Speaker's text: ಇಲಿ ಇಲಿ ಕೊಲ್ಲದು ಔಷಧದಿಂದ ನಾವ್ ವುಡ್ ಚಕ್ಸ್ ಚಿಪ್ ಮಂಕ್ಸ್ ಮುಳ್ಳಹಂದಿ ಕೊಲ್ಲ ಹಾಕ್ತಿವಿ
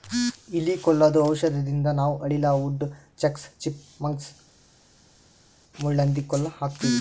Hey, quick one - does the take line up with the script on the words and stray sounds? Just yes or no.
no